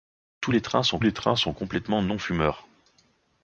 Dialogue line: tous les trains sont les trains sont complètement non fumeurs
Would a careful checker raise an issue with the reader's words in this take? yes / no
no